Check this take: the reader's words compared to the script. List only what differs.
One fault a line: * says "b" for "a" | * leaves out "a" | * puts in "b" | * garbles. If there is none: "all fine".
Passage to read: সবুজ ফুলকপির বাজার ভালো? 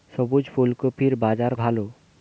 all fine